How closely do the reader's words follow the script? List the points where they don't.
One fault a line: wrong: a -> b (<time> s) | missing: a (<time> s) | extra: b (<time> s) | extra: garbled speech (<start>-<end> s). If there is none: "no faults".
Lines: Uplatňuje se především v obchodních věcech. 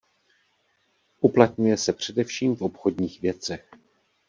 no faults